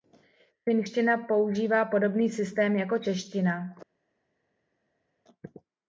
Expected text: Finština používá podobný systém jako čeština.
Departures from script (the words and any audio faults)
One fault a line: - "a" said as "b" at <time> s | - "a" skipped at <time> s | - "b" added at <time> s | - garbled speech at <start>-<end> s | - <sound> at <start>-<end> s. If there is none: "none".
none